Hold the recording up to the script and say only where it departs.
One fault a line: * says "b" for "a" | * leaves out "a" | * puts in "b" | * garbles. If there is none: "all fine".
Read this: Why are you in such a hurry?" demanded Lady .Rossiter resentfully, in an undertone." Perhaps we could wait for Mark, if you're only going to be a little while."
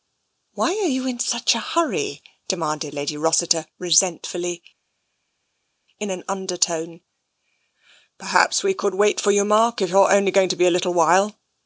* puts in "you"